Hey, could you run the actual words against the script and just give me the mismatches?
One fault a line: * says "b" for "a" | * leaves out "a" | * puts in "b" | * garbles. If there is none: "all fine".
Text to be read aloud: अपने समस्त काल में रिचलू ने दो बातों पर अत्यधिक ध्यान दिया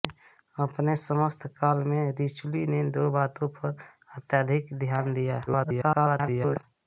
* garbles